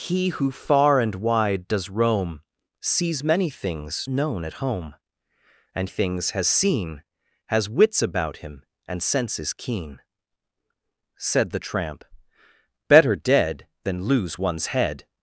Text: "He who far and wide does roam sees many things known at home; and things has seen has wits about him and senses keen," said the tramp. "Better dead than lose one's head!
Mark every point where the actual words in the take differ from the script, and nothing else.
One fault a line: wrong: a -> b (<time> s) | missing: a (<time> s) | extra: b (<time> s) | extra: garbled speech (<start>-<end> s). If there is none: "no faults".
no faults